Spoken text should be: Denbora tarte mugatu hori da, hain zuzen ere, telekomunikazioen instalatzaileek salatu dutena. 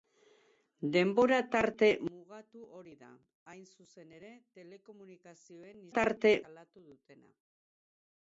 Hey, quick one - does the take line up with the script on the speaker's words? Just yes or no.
no